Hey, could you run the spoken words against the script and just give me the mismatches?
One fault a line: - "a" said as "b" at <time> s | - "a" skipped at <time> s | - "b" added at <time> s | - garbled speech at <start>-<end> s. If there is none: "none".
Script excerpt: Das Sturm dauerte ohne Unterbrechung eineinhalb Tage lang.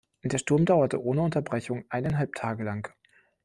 - "Das" said as "Der" at 0.2 s